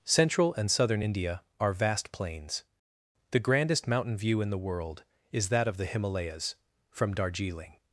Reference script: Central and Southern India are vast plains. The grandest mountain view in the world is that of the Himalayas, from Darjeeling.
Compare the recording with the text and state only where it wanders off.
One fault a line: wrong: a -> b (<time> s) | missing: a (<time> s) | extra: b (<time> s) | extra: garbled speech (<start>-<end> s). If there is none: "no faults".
no faults